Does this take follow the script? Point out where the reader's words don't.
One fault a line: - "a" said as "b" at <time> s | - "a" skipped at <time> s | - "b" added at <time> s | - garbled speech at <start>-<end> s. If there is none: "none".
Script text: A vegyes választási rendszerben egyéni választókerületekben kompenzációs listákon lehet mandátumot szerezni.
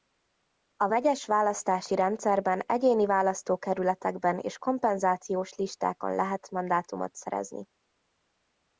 - "és" added at 4.4 s